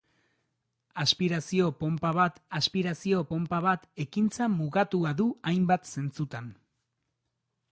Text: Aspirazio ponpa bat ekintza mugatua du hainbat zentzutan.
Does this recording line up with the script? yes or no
no